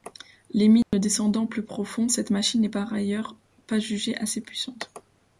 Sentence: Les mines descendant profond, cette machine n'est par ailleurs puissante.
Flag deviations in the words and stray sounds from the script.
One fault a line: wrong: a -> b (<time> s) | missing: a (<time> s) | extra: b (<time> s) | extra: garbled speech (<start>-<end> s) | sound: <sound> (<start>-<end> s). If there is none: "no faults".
sound: dropout (0.8-0.9 s)
extra: plus (1.4 s)
extra: pas jugée assez (3.7 s)